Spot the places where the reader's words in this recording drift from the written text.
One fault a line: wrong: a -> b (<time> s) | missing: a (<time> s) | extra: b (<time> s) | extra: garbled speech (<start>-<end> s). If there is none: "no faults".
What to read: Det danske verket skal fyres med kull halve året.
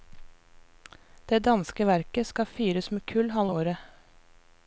no faults